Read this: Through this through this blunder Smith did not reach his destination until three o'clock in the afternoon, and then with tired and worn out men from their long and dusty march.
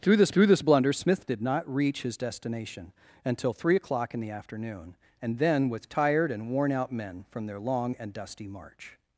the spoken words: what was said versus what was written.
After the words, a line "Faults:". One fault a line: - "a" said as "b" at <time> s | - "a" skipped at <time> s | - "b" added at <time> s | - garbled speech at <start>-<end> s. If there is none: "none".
Through this through this blunder Smith did not reach his destination until three o'clock in the afternoon, and then with tired and worn out men from their long and dusty march.
Faults:
none